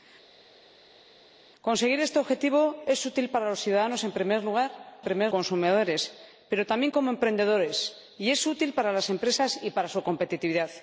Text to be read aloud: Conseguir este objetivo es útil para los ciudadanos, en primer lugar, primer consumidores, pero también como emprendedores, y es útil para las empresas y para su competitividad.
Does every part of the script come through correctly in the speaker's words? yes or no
yes